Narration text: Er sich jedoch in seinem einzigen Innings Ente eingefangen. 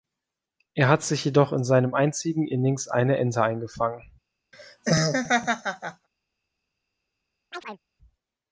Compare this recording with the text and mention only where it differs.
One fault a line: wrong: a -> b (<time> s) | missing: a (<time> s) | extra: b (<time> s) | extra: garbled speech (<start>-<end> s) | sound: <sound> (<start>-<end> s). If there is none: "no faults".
extra: hat (0.9 s)
extra: eine (2.9 s)
sound: laugh (4.5-6.1 s)
sound: chirp (7.5-7.8 s)